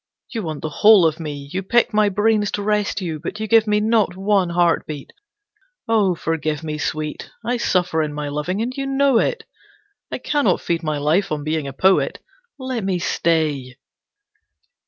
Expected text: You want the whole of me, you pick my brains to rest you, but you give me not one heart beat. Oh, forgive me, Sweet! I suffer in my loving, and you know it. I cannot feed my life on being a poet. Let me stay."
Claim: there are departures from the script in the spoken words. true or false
false